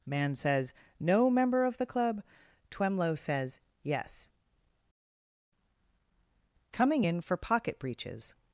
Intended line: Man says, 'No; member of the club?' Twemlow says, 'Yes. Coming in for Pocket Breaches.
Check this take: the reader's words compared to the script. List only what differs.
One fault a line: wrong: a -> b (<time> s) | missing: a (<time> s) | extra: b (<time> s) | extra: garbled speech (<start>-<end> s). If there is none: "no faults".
no faults